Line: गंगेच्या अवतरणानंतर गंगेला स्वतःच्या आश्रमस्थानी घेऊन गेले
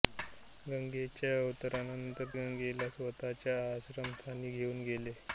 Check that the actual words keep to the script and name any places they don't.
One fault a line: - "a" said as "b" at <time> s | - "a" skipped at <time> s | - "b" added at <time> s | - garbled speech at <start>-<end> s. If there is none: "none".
none